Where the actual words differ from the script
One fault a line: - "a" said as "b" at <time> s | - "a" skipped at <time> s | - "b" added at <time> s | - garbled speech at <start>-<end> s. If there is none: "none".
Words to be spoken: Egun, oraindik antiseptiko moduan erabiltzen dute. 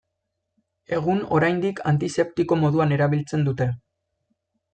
none